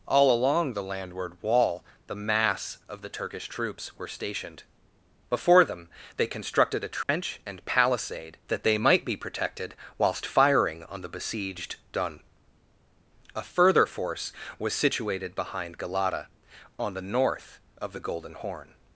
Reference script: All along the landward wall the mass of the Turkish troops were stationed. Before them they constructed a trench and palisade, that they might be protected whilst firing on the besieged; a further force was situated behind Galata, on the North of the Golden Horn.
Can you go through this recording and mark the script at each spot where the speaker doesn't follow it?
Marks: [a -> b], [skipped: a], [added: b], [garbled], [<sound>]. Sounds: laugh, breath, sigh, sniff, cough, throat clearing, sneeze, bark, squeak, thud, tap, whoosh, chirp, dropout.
All along the landward wall the mass of the Turkish troops were stationed. Before them they constructed a trench [dropout] and palisade, that they might be protected whilst firing on the besieged; [added: dun] a further force was situated behind Galata, on the North of the Golden Horn.